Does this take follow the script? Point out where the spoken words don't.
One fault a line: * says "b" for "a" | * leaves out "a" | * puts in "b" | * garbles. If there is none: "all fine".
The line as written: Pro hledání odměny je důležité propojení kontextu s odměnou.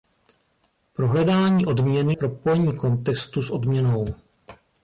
* leaves out "je důležité"